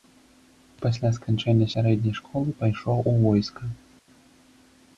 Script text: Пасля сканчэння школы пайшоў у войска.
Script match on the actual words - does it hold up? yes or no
no